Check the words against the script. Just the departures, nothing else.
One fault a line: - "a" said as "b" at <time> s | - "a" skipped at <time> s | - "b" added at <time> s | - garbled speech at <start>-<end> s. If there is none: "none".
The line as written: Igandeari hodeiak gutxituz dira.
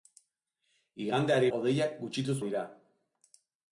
none